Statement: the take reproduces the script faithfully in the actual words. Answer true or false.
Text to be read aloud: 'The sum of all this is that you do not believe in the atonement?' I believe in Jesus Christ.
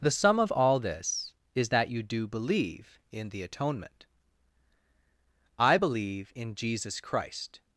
false